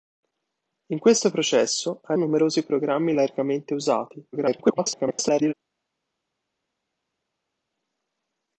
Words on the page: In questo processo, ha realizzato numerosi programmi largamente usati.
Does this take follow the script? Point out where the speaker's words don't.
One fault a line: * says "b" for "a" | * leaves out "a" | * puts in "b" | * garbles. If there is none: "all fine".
* leaves out "realizzato"
* garbles